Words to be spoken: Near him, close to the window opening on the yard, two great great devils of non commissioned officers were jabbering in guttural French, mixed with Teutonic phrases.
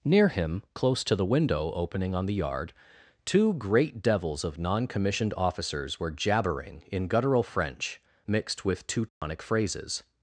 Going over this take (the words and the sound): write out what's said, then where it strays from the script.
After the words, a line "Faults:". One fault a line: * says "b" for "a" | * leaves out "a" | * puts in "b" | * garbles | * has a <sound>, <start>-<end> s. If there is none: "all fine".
Near him, close to the window opening on the yard, two great devils of non commissioned officers were jabbering in guttural French, mixed with Teutonic phrases.
Faults:
* leaves out "great"
* has a dropout, 9.1-9.2 s